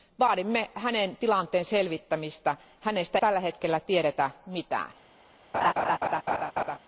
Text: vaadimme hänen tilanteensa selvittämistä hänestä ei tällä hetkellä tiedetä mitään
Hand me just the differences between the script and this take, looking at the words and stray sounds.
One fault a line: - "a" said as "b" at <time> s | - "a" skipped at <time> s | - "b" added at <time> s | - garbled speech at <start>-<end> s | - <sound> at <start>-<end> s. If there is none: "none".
- "ei" skipped at 3.2 s
- laugh at 5.5-6.8 s